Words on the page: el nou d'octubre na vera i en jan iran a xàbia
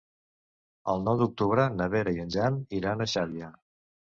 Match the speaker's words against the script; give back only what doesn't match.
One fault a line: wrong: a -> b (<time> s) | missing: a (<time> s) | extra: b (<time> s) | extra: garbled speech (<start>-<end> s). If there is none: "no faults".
no faults